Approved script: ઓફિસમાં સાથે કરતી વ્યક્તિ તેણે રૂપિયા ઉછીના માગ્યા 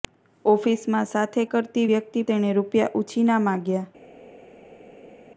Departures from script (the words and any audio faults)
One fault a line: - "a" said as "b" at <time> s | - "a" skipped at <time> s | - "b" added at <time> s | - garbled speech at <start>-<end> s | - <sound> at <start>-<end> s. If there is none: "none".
none